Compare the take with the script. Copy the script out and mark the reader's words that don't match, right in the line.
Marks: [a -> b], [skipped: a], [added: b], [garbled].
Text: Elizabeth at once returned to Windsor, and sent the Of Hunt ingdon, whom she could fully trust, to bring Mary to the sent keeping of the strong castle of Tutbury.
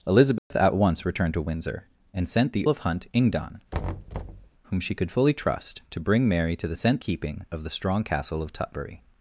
Elizabeth at once returned to Windsor, and sent the Of Hunt ingdon, whom she could fully trust, to bring Mary to the sent keeping of the strong castle of Tutbury.